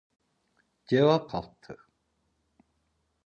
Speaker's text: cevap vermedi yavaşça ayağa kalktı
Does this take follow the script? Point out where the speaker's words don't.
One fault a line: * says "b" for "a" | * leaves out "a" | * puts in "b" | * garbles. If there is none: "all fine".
* leaves out "vermedi yavaşça ayağa"